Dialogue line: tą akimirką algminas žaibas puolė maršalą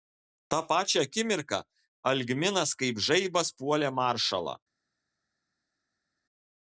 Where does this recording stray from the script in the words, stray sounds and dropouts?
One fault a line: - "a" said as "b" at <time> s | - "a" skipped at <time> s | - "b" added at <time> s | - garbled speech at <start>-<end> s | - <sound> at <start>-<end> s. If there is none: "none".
- "pačią" added at 0.7 s
- "kaip" added at 2.8 s